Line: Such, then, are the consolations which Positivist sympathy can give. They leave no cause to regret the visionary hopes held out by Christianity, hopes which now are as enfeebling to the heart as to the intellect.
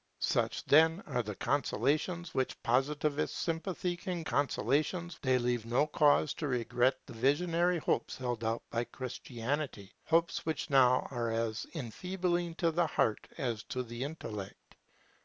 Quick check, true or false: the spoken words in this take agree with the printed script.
false